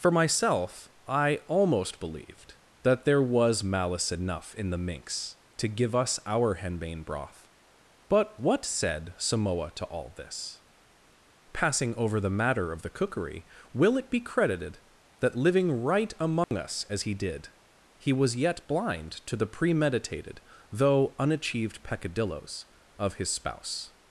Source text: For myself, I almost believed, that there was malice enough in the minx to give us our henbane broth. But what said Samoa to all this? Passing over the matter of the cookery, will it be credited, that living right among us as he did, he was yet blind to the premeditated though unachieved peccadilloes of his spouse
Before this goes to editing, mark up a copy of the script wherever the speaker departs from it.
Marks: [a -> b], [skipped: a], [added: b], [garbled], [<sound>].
For myself, I almost believed, that there was malice enough in the minx to give us our henbane broth. But what said Samoa to all this? Passing over the matter of the cookery, will it be credited, that living right among [dropout] us as he did, he was yet blind to the premeditated though unachieved peccadilloes of his spouse